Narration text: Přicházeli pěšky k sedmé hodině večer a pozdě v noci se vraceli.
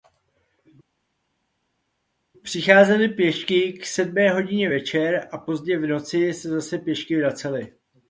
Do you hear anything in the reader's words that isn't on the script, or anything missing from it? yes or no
yes